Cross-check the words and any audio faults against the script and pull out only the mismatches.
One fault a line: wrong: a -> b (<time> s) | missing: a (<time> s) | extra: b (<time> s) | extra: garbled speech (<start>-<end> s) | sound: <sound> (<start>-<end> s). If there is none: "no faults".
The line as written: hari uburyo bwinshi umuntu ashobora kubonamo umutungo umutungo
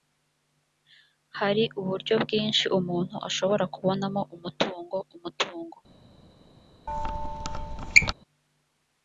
sound: squeak (6.9-8.1 s)